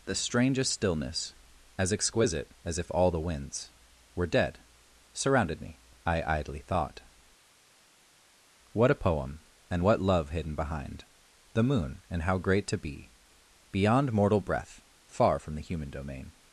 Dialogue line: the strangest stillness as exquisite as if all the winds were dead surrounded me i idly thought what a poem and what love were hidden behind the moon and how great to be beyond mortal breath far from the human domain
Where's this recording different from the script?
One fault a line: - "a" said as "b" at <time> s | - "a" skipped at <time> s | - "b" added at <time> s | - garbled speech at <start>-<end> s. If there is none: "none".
- "were" skipped at 10.3 s